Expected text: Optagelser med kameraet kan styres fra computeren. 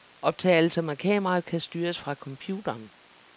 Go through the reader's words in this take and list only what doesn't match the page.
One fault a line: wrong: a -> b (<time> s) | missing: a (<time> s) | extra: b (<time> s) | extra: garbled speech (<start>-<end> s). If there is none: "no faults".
no faults